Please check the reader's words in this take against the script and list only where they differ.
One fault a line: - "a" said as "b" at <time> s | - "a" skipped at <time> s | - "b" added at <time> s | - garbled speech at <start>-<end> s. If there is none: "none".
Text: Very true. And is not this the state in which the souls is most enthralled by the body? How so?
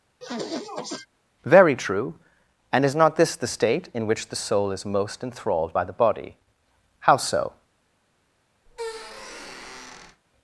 - "souls" said as "soul" at 4.4 s